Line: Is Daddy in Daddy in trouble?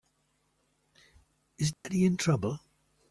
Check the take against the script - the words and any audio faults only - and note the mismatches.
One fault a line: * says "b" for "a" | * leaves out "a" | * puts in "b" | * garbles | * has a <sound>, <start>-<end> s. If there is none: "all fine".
* has a dropout, 1.7-1.8 s
* leaves out "Daddy in"